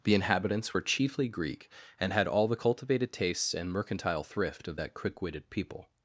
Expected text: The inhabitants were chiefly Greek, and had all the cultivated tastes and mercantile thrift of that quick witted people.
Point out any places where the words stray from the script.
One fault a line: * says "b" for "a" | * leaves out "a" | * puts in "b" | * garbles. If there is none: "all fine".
all fine